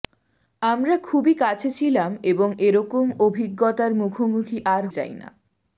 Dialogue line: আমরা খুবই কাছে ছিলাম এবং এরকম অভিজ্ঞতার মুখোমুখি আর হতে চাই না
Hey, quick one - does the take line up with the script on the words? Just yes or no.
no